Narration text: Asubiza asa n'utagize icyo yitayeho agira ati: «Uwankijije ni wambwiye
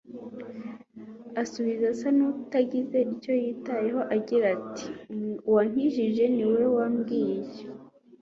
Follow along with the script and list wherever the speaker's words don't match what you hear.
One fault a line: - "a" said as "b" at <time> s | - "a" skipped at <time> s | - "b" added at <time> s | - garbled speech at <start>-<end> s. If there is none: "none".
- "we" added at 6.5 s